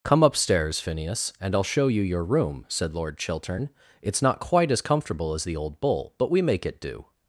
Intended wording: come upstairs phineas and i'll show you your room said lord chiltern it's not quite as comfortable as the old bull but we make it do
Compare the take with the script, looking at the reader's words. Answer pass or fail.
pass